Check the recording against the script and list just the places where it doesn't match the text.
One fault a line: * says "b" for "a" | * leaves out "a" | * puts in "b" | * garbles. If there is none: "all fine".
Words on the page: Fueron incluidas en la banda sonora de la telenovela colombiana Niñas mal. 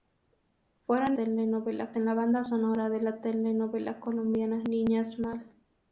* says "telenovela" for "incluidas"